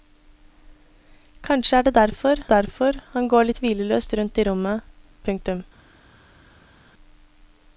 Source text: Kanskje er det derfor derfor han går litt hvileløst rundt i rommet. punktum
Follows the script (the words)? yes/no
yes